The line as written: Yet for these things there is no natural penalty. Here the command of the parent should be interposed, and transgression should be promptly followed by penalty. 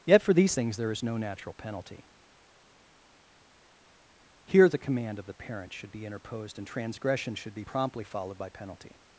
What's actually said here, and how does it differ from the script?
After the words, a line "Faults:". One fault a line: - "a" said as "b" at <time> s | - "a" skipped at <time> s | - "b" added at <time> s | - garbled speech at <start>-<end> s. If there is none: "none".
Yet for these things there is no natural penalty. Here the command of the parent should be interposed, and transgression should be promptly followed by penalty.
Faults:
none